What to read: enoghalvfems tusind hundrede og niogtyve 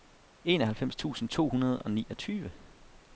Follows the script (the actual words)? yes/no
no